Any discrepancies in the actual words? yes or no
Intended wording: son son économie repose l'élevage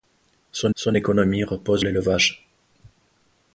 no